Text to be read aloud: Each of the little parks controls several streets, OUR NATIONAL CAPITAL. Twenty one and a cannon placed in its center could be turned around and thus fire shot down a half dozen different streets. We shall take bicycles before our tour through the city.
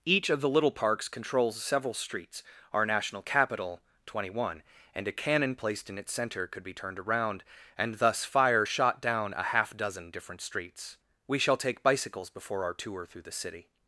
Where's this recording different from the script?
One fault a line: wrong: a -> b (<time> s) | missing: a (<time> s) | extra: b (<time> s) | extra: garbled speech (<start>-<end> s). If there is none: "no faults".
no faults